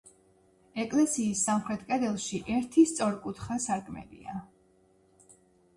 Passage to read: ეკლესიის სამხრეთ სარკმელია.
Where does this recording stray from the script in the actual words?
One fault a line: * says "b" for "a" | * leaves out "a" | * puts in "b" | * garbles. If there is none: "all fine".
* puts in "კედელში ერთი სწორკუთხა"